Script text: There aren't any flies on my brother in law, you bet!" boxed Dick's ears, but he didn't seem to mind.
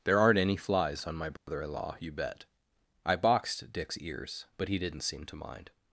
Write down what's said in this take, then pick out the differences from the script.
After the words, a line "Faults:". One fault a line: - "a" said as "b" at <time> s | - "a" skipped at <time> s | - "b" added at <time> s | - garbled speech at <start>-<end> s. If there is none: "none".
There aren't any flies on my brother in law, you bet!" I boxed Dick's ears, but he didn't seem to mind.
Faults:
- "I" added at 3.0 s